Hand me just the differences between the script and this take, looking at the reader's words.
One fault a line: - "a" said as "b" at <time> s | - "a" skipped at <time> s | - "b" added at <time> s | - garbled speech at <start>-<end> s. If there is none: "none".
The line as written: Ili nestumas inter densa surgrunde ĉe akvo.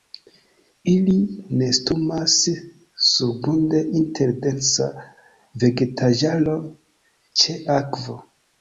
- "surgrunde" added at 3.1 s
- "surgrunde" said as "vegetaĵaro" at 5.7 s